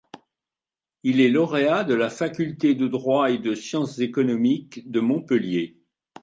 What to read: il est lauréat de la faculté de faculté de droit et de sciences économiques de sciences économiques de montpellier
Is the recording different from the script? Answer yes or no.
yes